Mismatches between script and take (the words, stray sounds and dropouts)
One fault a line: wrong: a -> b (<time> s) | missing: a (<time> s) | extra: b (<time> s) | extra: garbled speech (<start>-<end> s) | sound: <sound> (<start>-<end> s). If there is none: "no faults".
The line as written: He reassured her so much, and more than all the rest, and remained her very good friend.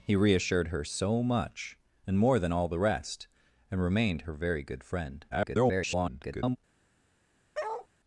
extra: garbled speech (5.3-6.6 s)
sound: bark (7.5-7.9 s)